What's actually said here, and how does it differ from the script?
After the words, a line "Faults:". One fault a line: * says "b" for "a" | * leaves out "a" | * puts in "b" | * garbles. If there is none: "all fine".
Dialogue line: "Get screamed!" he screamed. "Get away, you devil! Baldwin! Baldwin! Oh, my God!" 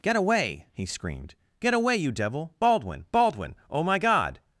"Get away!" he screamed. "Get away, you devil! Baldwin! Baldwin! Oh, my God!"
Faults:
* says "away" for "screamed"